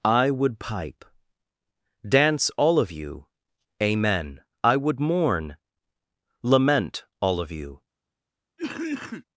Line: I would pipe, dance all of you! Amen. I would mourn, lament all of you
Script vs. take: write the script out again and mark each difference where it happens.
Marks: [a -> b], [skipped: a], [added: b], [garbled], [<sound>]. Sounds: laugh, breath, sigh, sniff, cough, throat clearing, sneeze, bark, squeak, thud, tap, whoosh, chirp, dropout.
I would pipe, dance all of you! Amen. I would mourn, lament all of you [cough]